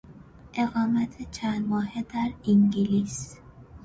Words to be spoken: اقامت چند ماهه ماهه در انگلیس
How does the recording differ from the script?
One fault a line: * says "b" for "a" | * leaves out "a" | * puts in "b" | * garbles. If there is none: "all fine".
* leaves out "ماهه"